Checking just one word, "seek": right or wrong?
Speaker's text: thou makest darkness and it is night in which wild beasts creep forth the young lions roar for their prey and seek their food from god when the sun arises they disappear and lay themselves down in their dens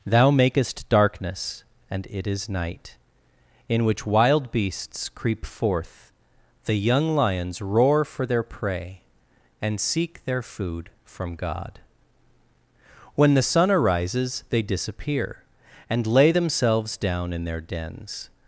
right